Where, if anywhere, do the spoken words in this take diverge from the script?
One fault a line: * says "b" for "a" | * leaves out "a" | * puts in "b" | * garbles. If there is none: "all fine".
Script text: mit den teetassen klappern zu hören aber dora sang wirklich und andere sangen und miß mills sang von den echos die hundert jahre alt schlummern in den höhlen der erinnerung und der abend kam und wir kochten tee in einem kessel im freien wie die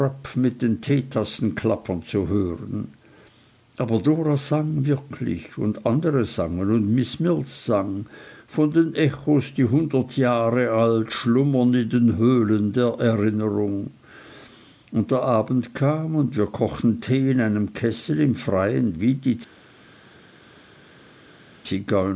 all fine